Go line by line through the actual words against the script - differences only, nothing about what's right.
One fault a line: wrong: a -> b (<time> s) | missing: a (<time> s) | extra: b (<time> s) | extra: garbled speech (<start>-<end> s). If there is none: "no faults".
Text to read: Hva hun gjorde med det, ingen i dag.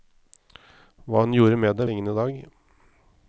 no faults